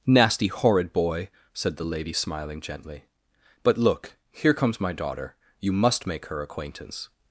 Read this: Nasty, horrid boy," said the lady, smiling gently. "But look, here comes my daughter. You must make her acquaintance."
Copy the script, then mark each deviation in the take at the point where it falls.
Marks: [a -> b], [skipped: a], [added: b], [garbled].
Nasty, horrid boy," said the lady, smiling gently. "But look, here comes my daughter. You must make her acquaintance."